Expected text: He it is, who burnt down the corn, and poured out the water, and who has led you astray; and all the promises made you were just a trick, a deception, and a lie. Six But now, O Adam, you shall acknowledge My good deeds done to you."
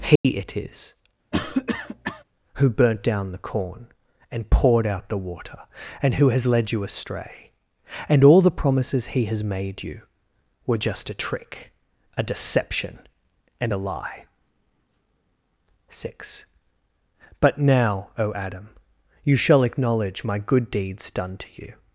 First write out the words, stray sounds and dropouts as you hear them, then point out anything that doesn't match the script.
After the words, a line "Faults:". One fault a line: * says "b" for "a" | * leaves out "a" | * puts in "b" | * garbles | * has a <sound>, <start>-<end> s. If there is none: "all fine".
He it is, who burnt down the corn, and poured out the water, and who has led you astray; and all the promises he has made you were just a trick, a deception, and a lie. Six But now, O Adam, you shall acknowledge My good deeds done to you."
Faults:
* has a dropout, 0.2-0.2 s
* has a cough, 1.3-2.2 s
* puts in "he has"